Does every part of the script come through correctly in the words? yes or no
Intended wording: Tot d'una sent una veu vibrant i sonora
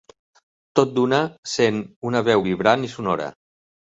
yes